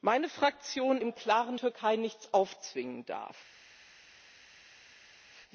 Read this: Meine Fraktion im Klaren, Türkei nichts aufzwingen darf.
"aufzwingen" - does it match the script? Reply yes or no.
yes